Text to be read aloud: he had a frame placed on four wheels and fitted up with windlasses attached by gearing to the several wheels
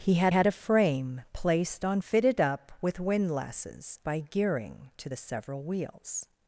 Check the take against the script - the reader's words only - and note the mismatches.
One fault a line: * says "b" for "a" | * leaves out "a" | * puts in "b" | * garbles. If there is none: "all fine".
* puts in "had"
* leaves out "four wheels and"
* leaves out "attached"